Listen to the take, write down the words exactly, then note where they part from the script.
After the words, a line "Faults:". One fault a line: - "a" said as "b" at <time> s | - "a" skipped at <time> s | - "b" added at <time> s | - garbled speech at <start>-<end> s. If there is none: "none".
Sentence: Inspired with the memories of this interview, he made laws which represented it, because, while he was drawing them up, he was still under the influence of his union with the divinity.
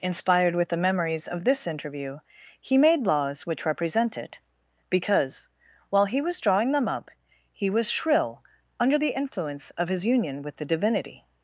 Inspired with the memories of this interview, he made laws which represent it, because, while he was drawing them up, he was shrill under the influence of his union with the divinity.
Faults:
- "represented" said as "represent" at 3.7 s
- "still" said as "shrill" at 7.9 s